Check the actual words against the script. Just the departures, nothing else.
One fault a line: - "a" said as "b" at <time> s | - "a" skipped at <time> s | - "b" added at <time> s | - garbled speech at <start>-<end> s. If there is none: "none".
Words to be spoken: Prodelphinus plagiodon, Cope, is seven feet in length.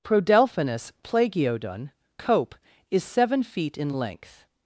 none